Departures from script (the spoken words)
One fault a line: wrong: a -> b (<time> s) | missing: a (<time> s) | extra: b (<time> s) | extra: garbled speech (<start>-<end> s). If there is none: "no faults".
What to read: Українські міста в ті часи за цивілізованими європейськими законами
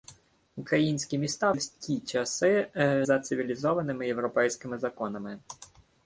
no faults